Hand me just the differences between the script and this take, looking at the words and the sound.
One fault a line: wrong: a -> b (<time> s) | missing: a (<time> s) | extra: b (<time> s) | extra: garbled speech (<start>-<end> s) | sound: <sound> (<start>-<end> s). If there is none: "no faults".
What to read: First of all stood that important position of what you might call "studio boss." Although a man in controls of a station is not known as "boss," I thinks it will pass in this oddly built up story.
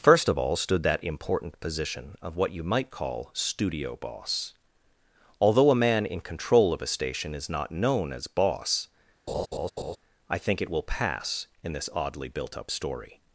wrong: controls -> control (6.2 s)
sound: laugh (9.3-10.0 s)
wrong: thinks -> think (10.4 s)